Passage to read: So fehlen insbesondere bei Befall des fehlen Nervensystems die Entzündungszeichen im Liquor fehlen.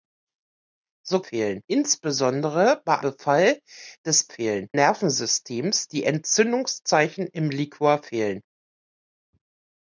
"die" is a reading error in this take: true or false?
false